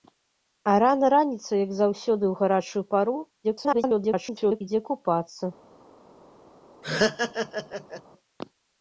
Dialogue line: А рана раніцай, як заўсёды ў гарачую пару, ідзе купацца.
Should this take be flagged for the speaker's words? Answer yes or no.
yes